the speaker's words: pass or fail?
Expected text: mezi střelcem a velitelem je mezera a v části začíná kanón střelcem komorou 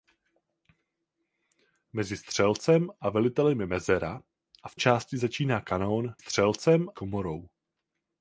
pass